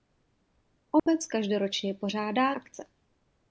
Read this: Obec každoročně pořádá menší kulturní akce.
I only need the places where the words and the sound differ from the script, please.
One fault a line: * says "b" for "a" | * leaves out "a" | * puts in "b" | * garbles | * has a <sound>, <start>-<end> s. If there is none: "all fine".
* has a dropout, 1.0-1.1 s
* leaves out "menší kulturní"